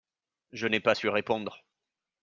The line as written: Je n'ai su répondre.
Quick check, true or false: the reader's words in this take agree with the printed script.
false